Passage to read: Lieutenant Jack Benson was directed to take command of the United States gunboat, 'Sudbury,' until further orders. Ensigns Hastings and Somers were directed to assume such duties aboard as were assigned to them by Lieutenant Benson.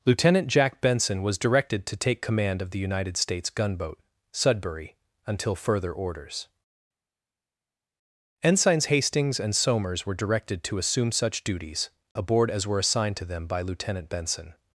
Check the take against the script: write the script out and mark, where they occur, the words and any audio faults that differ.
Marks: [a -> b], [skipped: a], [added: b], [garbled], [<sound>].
Lieutenant Jack Benson was directed to take command of the United States gunboat, 'Sudbury,' until further orders. Ensigns Hastings and Somers were directed to assume such duties aboard as were assigned to them by Lieutenant Benson.